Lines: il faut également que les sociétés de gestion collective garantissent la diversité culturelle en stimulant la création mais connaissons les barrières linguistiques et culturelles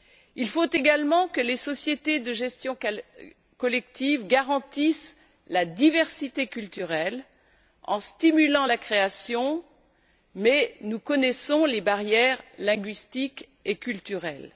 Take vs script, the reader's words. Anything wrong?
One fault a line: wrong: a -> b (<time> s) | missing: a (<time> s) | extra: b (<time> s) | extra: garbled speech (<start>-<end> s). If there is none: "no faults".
extra: nous (10.8 s)